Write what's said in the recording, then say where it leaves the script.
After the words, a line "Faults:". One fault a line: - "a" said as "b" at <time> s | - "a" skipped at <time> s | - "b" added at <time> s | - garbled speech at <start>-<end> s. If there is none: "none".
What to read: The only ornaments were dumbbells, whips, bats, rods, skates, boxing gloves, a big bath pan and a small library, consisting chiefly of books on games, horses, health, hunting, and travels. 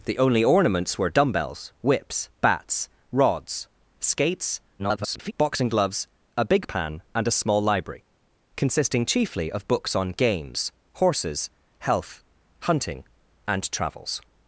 The only ornaments were dumbbells, whips, bats, rods, skates, [garbled] boxing gloves, a big pan and a small library, consisting chiefly of books on games, horses, health, hunting, and travels.
Faults:
- garbled speech at 4.8-5.3 s
- "bath" skipped at 6.7 s